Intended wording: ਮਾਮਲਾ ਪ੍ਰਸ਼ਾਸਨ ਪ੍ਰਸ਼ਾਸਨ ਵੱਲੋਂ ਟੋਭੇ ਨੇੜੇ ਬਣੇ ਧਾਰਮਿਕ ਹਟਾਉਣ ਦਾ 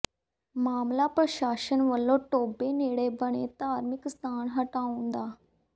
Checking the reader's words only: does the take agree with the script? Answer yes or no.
no